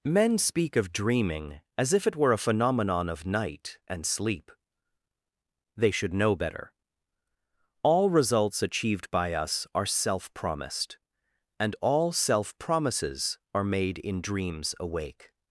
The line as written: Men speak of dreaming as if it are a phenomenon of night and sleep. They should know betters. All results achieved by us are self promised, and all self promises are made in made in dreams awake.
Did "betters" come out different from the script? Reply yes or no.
yes